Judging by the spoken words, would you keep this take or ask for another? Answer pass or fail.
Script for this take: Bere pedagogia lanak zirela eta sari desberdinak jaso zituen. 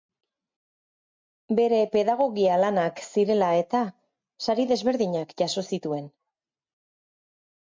pass